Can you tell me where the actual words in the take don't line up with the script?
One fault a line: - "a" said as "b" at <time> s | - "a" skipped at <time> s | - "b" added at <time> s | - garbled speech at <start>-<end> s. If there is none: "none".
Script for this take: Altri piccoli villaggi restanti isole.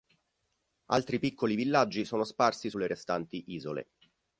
- "sono sparsi sulle" added at 2.0 s